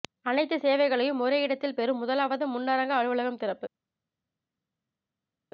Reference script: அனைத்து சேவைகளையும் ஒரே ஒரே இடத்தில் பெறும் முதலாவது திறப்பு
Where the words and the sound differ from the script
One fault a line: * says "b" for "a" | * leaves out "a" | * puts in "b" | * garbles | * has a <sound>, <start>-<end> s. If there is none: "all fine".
* leaves out "ஒரே"
* puts in "முன்னரங்க அலுவலகம்"